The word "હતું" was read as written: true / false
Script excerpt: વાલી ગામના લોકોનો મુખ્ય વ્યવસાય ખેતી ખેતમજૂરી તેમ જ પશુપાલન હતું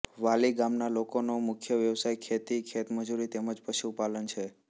false